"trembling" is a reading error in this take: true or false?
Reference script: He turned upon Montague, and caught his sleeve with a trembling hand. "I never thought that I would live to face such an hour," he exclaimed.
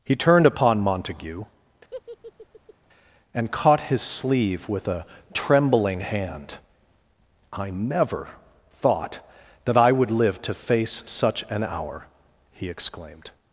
false